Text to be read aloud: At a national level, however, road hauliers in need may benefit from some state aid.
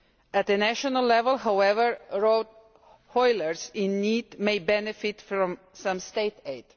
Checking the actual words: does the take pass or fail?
pass